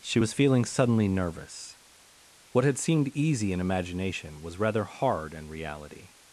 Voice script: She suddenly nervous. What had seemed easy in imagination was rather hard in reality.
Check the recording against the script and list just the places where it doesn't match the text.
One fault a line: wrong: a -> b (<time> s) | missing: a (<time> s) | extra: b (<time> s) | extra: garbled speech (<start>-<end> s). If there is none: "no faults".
extra: was feeling (0.2 s)